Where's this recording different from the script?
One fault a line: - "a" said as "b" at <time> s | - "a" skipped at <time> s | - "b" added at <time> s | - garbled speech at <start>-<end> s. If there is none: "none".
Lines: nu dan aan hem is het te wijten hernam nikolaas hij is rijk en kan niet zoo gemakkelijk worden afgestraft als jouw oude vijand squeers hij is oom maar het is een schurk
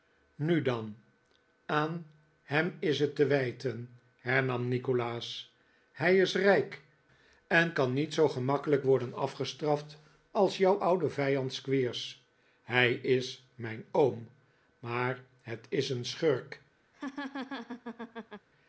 - "mijn" added at 13.6 s